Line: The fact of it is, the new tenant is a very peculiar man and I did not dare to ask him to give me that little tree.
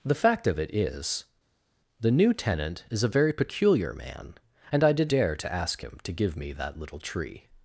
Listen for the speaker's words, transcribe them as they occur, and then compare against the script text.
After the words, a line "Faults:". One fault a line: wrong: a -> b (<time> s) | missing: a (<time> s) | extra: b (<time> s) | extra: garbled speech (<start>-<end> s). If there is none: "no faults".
The fact of it is, the new tenant is a very peculiar man and I did dare to ask him to give me that little tree.
Faults:
missing: not (5.1 s)